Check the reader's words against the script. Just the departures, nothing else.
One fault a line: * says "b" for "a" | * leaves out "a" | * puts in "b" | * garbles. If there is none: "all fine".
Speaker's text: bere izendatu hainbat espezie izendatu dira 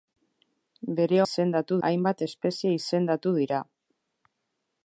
all fine